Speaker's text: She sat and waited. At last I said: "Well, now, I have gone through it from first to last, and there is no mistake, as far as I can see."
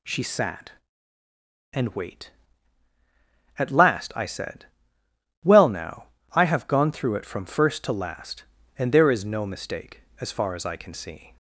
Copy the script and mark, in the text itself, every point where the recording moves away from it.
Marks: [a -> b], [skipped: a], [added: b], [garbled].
She sat and [waited. -> wait] At last I said: "Well, now, I have gone through it from first to last, and there is no mistake, as far as I can see."